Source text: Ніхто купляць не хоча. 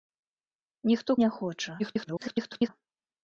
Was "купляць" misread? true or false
true